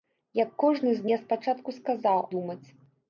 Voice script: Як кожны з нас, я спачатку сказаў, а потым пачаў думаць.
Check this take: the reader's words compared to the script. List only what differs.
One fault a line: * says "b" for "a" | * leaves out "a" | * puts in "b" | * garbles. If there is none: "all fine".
* leaves out "нас"
* leaves out "а потым пачаў"